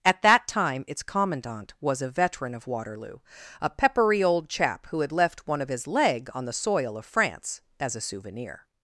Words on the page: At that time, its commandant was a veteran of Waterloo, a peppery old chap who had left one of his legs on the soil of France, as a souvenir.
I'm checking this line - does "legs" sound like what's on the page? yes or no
no